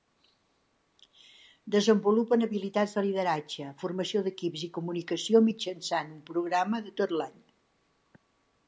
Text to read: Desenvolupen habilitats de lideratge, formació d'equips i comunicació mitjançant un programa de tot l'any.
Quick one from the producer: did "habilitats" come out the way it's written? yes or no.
yes